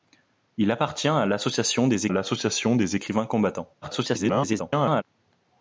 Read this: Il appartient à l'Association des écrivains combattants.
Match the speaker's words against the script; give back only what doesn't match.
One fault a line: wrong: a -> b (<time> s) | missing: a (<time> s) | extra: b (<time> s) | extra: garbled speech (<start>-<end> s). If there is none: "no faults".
extra: l'Association des (2.1 s)
extra: garbled speech (3.8-5.0 s)